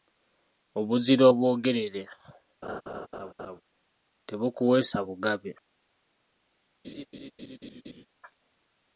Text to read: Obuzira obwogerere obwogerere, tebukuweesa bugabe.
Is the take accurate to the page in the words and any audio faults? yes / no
no